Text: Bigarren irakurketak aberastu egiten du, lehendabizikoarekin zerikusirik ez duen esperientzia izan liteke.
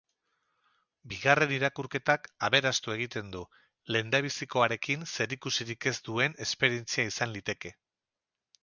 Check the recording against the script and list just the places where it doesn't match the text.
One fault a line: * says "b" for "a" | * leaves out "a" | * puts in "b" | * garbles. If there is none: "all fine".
all fine